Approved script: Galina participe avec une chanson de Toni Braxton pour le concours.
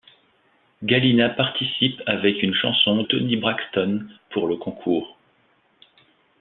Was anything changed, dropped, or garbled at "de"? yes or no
yes